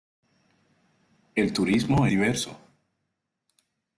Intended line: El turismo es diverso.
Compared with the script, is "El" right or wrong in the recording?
right